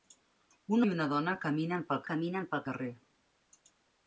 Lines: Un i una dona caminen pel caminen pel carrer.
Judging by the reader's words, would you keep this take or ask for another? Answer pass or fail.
pass